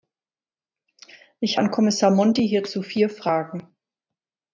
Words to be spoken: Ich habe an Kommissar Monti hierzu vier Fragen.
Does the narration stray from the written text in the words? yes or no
yes